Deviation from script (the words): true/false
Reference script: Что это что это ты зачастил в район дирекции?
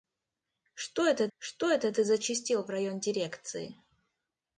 false